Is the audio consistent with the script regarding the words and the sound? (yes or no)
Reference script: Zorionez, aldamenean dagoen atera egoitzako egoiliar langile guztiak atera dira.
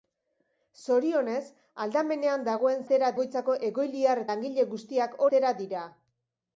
yes